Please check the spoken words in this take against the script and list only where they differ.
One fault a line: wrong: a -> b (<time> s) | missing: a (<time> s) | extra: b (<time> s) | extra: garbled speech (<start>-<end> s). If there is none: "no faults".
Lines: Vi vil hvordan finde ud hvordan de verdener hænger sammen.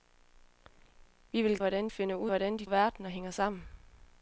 no faults